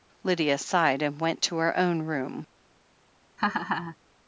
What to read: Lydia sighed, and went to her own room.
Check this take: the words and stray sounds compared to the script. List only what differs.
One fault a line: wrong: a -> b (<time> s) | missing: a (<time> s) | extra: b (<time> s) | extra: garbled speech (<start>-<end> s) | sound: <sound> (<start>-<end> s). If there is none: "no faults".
sound: laugh (3.4-4.0 s)